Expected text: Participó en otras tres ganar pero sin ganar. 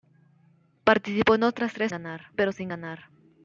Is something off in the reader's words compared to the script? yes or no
no